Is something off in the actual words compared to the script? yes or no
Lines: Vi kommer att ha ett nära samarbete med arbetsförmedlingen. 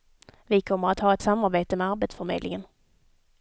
yes